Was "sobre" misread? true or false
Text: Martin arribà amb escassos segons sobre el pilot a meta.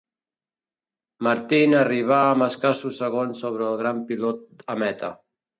false